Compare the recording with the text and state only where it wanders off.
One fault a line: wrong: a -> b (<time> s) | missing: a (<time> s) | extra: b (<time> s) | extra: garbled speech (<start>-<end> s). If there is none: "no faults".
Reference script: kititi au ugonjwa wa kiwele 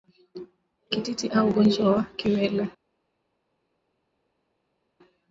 no faults